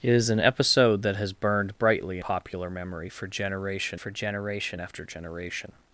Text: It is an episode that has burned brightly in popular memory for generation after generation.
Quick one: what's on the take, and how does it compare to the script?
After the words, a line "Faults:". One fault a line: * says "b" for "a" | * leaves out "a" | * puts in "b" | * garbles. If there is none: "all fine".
It is an episode that has burned brightly popular memory for generation for generation after generation.
Faults:
* leaves out "in"
* puts in "for generation"